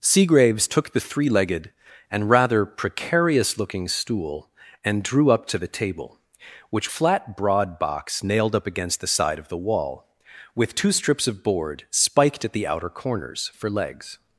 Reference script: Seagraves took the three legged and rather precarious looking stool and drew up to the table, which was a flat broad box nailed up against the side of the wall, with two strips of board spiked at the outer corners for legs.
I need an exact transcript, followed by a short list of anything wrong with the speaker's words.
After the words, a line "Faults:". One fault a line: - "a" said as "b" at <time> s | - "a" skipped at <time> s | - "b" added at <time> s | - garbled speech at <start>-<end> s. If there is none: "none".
Seagraves took the three legged and rather precarious looking stool and drew up to the table, which flat broad box nailed up against the side of the wall, with two strips of board spiked at the outer corners for legs.
Faults:
- "was a" skipped at 6.9 s